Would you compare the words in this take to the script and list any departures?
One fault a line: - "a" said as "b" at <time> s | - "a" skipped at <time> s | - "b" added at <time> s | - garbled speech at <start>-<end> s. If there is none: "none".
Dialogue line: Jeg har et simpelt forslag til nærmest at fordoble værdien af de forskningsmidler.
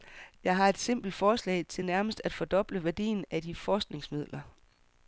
none